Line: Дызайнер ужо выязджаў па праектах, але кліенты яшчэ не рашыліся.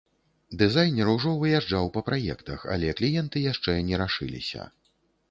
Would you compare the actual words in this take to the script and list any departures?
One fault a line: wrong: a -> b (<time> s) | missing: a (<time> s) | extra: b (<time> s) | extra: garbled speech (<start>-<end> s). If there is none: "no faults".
no faults